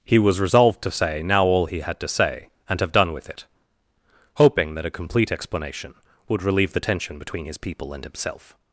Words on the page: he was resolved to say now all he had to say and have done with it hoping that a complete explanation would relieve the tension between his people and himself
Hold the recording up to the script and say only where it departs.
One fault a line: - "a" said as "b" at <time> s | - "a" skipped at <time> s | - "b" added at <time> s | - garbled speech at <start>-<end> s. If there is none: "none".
none